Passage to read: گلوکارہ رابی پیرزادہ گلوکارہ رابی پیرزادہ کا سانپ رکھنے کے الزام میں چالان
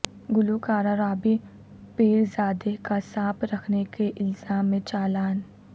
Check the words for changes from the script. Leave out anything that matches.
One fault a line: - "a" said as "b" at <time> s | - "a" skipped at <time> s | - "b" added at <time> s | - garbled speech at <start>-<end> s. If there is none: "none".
- "گلوکارہ رابی پیرزادہ" skipped at 2.7 s